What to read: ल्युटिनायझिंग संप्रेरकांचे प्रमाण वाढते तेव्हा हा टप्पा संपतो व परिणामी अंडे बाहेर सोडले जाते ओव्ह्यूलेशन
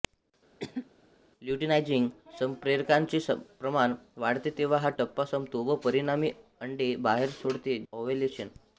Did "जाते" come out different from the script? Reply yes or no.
yes